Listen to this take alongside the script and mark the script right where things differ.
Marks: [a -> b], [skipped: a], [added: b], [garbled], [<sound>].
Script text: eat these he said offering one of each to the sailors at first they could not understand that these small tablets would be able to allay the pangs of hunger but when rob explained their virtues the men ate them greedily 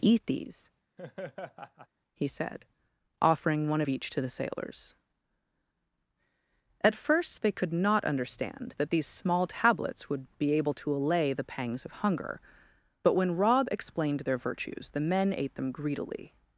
eat these [laugh] he said offering one of each to the sailors at first they could not understand that these small tablets would be able to allay the pangs of hunger but when rob explained their virtues the men ate them greedily